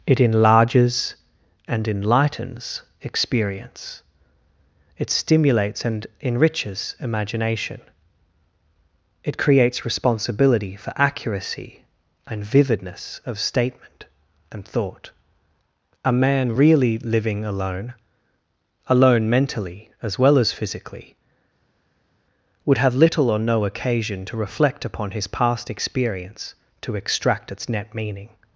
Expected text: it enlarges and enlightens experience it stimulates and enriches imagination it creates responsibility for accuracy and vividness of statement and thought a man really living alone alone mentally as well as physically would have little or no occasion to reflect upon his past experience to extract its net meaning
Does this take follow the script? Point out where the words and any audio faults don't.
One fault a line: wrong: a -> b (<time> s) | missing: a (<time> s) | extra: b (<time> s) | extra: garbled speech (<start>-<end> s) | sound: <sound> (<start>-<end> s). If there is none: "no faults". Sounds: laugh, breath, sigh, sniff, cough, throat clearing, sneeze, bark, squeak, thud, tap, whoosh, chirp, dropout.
no faults